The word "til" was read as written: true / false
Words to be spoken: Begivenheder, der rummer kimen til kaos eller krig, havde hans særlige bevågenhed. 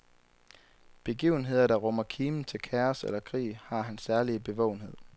true